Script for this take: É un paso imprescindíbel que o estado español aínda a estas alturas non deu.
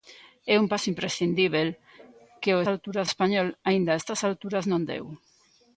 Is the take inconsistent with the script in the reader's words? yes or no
yes